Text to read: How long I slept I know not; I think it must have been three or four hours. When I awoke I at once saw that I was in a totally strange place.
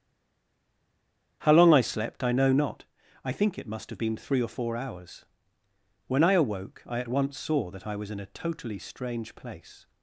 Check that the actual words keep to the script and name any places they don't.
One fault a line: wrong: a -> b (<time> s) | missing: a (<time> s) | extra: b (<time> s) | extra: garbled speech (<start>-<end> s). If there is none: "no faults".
no faults